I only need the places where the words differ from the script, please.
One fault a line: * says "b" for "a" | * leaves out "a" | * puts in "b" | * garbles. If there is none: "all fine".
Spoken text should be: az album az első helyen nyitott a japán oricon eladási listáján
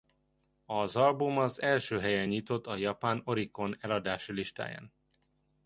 all fine